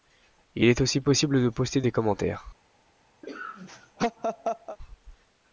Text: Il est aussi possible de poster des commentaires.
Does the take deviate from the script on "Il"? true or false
false